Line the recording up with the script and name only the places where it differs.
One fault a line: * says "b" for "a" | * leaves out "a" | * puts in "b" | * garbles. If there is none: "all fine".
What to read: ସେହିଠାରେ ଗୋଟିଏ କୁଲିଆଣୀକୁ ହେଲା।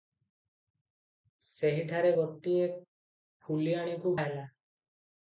all fine